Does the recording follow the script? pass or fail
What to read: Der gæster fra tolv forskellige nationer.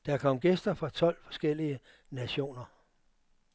fail